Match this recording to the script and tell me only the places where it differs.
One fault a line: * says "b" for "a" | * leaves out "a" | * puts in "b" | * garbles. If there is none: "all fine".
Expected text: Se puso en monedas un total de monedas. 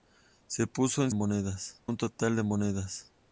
all fine